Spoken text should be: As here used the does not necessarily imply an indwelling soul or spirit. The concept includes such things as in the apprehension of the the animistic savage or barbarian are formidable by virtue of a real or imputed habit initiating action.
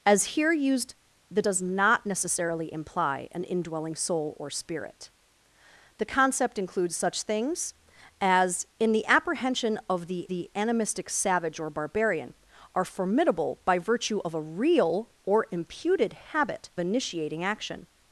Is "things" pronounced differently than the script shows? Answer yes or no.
no